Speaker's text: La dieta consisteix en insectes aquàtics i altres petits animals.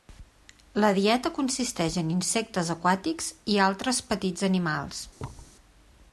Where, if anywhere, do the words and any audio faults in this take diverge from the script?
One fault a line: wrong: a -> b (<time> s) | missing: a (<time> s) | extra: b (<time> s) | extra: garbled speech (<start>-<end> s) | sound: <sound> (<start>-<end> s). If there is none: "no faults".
sound: thud (5.2-5.6 s)